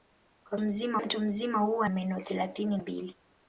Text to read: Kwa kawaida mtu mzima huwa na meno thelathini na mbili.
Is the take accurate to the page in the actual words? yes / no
no